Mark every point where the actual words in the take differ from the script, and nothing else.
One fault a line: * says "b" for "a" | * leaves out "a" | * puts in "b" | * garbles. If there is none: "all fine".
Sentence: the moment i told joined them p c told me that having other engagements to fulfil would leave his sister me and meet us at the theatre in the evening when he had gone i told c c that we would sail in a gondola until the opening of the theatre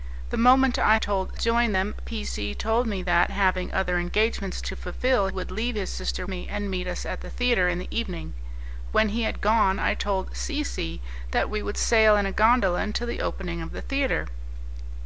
all fine